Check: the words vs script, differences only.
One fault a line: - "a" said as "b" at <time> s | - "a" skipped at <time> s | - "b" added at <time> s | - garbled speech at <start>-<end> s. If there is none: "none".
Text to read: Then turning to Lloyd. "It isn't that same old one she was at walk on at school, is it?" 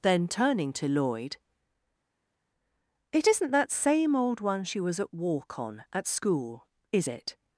none